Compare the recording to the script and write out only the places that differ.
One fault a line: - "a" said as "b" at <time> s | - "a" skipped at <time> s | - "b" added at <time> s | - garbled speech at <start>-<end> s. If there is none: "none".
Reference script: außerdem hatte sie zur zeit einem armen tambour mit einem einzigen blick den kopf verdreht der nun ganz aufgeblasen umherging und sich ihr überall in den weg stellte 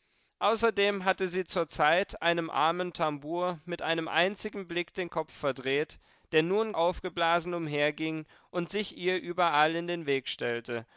- "ganz" skipped at 6.7 s